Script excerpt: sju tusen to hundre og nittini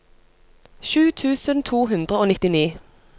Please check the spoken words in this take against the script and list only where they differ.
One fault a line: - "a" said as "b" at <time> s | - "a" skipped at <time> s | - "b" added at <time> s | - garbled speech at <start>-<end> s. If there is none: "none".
none